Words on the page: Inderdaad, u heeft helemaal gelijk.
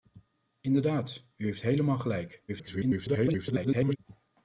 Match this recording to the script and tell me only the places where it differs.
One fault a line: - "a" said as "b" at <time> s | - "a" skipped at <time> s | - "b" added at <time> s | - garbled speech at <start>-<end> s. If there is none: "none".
- garbled speech at 2.5-4.0 s